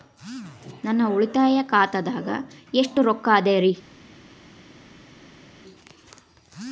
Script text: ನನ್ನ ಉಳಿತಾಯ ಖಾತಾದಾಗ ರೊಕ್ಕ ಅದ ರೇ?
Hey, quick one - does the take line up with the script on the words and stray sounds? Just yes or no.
no